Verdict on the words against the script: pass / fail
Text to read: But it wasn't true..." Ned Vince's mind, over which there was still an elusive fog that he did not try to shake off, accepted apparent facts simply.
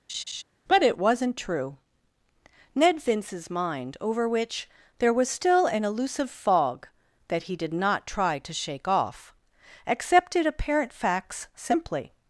pass